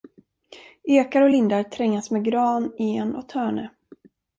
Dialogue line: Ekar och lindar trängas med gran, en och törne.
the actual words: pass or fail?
pass